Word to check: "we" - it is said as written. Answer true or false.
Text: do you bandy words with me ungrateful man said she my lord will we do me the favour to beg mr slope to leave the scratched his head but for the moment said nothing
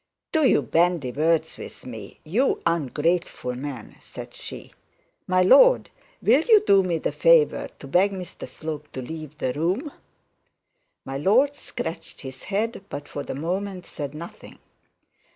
false